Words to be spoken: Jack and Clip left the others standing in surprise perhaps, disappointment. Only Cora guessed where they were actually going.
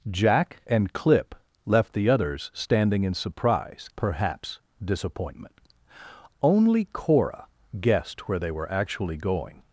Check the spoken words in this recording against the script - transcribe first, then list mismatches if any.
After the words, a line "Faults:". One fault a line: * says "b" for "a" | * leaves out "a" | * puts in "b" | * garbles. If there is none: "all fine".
Jack and Clip left the others standing in surprise perhaps, disappointment. Only Cora guessed where they were actually going.
Faults:
all fine